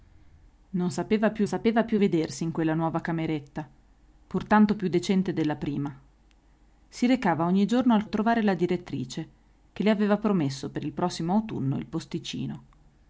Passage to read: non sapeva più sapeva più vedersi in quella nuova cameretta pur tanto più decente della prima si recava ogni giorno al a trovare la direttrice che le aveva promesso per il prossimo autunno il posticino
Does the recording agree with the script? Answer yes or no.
yes